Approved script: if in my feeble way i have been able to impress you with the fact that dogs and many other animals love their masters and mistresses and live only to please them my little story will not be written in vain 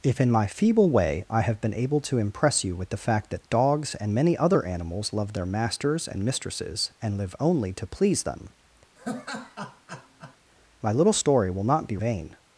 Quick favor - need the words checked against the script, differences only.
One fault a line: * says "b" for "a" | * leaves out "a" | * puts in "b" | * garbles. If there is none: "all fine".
* leaves out "written in"